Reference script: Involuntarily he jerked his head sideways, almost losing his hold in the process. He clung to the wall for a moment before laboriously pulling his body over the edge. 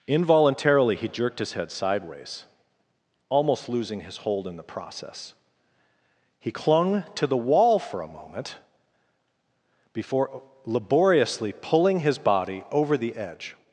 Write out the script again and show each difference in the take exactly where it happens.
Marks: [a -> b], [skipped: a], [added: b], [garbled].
Involuntarily he jerked his head sideways, almost losing his hold in the process. He clung to the wall for a moment before laboriously pulling his body over the edge.